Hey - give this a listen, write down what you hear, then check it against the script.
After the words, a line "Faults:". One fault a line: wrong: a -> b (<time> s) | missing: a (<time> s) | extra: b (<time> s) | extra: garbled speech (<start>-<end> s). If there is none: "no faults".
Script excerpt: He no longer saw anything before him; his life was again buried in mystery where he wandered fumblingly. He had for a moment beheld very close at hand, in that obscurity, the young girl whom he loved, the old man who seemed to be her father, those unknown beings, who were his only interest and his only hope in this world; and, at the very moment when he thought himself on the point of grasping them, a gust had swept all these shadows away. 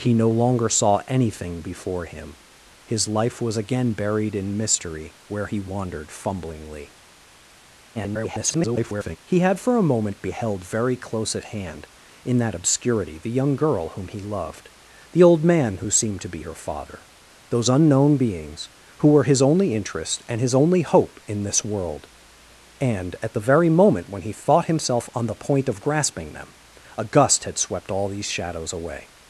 He no longer saw anything before him; his life was again buried in mystery where he wandered fumblingly. [garbled] He had for a moment beheld very close at hand, in that obscurity, the young girl whom he loved, the old man who seemed to be her father, those unknown beings, who were his only interest and his only hope in this world; and, at the very moment when he thought himself on the point of grasping them, a gust had swept all these shadows away.
Faults:
extra: garbled speech (7.9-9.2 s)